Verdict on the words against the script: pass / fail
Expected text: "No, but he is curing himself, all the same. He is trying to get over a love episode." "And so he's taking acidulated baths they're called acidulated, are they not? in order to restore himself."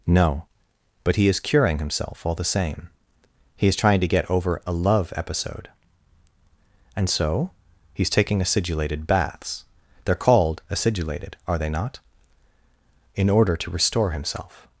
pass